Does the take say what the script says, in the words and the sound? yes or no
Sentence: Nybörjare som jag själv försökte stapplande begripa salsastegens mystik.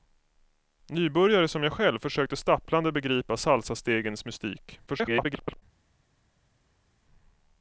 no